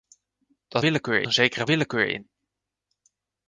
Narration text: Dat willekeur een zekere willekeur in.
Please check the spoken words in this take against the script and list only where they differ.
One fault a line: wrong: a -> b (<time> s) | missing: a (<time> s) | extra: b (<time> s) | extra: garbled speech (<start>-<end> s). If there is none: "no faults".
no faults